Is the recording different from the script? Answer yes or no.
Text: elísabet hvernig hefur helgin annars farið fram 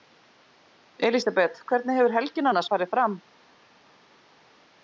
no